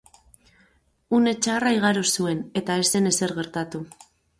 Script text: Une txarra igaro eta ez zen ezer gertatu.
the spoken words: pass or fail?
fail